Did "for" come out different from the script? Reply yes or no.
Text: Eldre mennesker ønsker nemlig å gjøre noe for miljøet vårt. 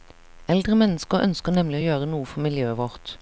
no